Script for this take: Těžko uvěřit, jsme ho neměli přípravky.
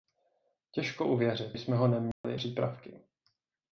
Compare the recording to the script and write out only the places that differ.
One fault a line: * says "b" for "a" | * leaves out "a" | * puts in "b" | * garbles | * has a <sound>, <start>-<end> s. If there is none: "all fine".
* has a dropout, 2.1-2.2 s